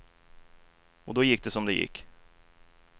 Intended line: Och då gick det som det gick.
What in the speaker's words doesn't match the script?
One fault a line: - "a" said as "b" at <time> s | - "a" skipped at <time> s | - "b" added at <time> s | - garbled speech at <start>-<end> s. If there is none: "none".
none